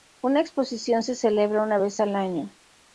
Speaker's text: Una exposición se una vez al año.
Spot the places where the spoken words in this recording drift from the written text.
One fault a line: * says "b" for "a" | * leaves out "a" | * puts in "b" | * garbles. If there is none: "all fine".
* puts in "celebra"